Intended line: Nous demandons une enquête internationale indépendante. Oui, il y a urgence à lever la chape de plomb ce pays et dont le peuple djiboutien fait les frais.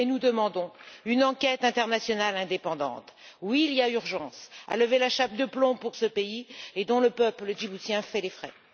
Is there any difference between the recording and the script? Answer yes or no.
no